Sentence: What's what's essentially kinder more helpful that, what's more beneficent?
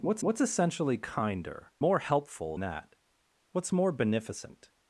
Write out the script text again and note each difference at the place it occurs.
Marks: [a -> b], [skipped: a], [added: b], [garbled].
What's what's essentially kinder more helpful that, what's more beneficent?